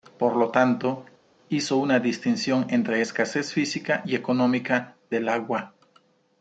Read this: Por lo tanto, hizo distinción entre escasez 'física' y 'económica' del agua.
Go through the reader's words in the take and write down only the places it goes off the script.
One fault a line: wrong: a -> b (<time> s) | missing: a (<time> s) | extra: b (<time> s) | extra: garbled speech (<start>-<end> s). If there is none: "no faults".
extra: una (1.8 s)